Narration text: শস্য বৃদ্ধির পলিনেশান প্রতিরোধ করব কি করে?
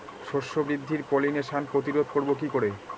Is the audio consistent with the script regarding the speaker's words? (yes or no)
yes